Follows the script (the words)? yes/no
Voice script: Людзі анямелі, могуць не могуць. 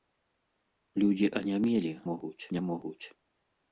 yes